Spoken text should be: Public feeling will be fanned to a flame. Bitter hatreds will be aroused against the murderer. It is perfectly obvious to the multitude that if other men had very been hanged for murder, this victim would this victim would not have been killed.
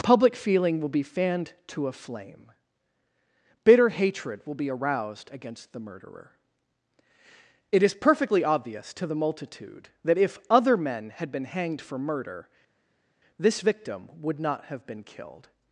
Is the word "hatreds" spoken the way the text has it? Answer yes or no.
no